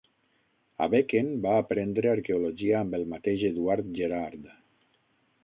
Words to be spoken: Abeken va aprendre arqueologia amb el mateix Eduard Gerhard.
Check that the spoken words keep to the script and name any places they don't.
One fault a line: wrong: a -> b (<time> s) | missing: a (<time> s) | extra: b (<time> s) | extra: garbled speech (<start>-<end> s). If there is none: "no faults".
no faults